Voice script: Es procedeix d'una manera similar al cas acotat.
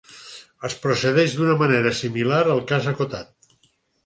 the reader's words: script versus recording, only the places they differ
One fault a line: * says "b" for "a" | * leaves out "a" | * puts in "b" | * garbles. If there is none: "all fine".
all fine